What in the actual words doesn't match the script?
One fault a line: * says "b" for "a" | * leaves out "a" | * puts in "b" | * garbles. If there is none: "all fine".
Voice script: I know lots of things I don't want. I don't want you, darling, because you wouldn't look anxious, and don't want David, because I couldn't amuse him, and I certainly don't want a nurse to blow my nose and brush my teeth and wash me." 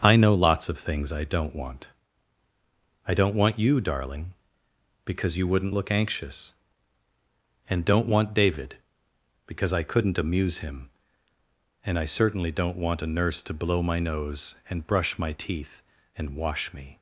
all fine